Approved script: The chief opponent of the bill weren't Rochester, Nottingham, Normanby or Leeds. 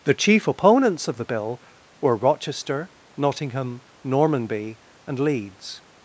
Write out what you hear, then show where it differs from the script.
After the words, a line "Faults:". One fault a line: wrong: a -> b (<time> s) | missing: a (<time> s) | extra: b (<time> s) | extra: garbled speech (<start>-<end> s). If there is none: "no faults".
The chief opponents of the bill were Rochester, Nottingham, Normanby and Leeds.
Faults:
wrong: opponent -> opponents (0.5 s)
wrong: weren't -> were (2.0 s)
wrong: or -> and (5.1 s)